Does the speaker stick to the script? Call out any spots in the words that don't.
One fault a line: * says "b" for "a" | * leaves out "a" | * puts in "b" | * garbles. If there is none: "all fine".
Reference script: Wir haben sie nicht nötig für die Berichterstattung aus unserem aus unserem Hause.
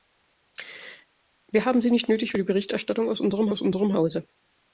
all fine